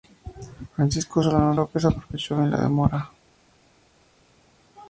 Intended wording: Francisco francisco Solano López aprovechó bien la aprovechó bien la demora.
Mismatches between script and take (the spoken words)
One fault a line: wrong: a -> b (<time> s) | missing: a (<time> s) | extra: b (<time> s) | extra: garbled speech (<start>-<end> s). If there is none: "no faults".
missing: francisco (1.2 s)
missing: aprovechó bien la (2.6 s)